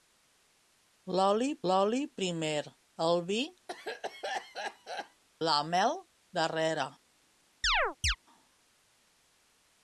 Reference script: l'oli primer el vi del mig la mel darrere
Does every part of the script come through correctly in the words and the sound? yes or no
no